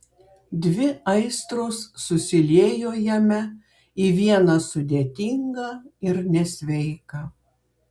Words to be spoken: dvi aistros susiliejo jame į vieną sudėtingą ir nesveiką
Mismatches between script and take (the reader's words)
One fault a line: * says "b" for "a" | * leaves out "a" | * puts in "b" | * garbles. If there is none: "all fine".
all fine